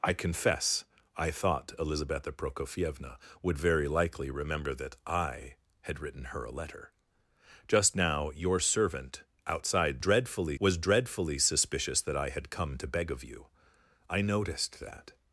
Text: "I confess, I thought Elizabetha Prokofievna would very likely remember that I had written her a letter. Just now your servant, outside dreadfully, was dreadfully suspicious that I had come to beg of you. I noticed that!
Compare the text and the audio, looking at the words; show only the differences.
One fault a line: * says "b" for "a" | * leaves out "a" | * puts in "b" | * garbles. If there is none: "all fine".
all fine